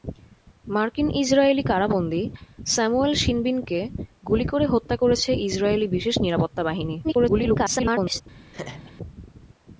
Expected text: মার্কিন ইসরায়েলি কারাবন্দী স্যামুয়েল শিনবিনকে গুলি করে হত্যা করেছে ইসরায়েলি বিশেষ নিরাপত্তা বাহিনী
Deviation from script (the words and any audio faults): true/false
true